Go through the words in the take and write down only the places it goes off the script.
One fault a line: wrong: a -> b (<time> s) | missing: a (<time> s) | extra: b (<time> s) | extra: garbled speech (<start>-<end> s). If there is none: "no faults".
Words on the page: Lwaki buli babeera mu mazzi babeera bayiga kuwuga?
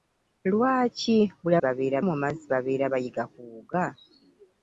no faults